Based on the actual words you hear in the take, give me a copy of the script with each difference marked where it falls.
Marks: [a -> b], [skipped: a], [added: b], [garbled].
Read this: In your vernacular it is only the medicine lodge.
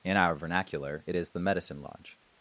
In [your -> our] vernacular it is [skipped: only] the medicine lodge.